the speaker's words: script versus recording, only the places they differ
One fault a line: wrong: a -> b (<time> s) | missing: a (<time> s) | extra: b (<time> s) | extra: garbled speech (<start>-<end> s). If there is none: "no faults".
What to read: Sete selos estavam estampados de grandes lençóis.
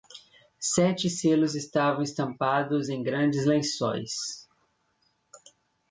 wrong: de -> em (2.9 s)